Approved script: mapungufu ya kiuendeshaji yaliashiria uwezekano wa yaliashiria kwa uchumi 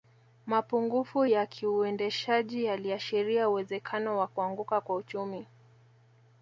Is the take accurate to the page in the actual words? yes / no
no